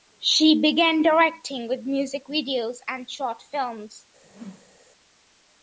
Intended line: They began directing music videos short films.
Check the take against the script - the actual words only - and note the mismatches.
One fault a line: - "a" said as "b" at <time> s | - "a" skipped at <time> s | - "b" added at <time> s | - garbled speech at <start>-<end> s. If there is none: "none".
- "They" said as "She" at 0.2 s
- "with" added at 1.7 s
- "and" added at 2.9 s